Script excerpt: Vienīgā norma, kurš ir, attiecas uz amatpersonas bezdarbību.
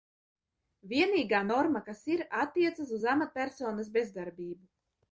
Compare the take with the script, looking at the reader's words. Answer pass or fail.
fail